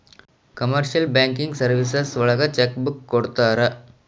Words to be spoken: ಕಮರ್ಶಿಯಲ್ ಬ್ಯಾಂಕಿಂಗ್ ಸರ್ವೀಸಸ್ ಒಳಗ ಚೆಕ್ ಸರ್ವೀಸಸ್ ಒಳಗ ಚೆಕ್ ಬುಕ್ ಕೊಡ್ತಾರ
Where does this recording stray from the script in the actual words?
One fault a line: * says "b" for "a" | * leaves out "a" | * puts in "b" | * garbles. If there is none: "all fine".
* leaves out "ಸರ್ವೀಸಸ್ ಒಳಗ ಚೆಕ್"